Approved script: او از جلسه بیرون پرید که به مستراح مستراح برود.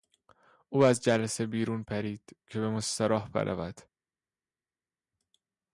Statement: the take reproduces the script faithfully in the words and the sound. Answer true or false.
false